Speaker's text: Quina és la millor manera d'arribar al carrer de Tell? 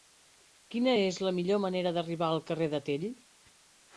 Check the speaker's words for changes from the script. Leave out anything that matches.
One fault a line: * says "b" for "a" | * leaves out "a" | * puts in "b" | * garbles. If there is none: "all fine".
all fine